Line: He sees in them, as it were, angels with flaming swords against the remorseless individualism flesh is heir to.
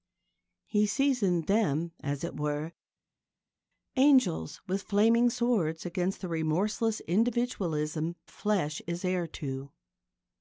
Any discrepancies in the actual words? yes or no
no